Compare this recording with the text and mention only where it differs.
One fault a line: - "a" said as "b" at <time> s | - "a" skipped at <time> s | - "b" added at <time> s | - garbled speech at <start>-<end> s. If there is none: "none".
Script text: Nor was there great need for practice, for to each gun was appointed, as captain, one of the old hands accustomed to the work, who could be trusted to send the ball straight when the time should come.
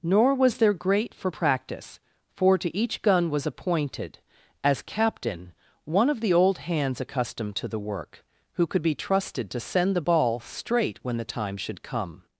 - "need" skipped at 1.1 s